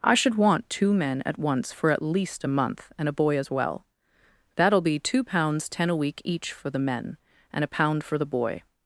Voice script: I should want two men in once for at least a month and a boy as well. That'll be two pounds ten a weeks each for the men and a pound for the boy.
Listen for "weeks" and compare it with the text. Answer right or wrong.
wrong